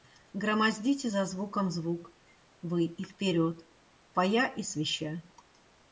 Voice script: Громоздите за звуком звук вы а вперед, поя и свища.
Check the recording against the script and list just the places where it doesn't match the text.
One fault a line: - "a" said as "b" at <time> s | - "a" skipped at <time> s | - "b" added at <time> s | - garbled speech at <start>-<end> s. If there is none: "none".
- "а" said as "и" at 2.8 s